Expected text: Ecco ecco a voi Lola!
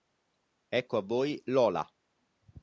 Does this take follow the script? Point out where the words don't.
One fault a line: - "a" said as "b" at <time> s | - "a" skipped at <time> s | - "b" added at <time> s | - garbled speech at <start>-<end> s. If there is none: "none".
- "ecco" skipped at 1.0 s